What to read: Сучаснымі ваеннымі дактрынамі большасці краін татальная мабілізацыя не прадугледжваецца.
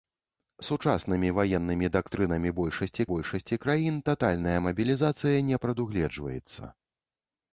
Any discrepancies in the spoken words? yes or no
yes